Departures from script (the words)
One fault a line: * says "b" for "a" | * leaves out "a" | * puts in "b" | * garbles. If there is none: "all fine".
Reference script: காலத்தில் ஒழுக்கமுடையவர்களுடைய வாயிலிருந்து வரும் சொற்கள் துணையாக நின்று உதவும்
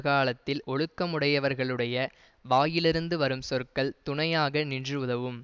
all fine